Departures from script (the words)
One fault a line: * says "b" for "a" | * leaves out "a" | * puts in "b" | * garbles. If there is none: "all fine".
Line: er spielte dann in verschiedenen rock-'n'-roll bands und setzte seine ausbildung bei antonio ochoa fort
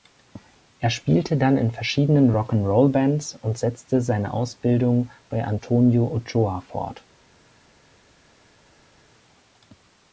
all fine